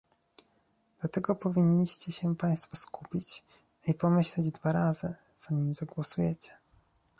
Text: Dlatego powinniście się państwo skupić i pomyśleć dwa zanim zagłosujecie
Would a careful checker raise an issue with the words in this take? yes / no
yes